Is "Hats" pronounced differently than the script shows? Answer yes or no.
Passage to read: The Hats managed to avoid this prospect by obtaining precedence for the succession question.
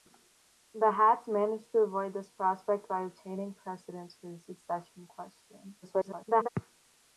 no